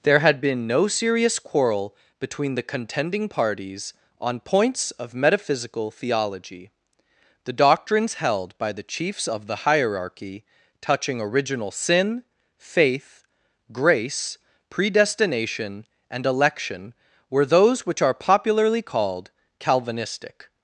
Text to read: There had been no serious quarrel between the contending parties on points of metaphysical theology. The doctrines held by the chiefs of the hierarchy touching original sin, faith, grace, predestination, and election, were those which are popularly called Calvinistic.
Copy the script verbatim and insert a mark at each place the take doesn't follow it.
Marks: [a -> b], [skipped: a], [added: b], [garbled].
There had been no serious quarrel between the contending parties on points of metaphysical theology. The doctrines held by the chiefs of the hierarchy touching original sin, faith, grace, predestination, and election, were those which are popularly called Calvinistic.